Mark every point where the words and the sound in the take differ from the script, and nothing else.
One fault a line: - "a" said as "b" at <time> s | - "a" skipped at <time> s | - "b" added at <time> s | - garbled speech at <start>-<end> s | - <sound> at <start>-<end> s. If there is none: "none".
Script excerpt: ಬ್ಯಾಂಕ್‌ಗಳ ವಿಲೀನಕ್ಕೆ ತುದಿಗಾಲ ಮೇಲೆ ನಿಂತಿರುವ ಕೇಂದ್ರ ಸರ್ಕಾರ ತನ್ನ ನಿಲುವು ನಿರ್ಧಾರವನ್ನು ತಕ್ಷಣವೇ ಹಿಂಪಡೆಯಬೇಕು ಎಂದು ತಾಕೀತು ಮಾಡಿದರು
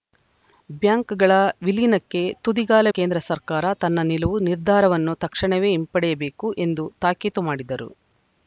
- "ಮೇಲೆ ನಿಂತಿರುವ" skipped at 2.9 s